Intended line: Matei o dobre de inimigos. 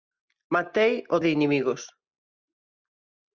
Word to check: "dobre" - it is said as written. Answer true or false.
false